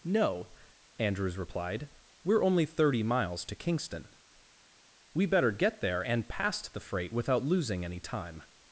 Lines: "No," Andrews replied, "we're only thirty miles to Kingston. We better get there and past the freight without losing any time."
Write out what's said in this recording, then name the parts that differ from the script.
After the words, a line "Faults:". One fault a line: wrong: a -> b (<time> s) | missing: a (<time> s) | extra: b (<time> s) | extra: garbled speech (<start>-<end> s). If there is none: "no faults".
"No," Andrews replied, "we're only thirty miles to Kingston. We better get there and past the freight without losing any time."
Faults:
no faults